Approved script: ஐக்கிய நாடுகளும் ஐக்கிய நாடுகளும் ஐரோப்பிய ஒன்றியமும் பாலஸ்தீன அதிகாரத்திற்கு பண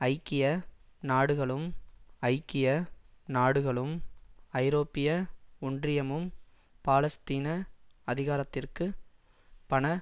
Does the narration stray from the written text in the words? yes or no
no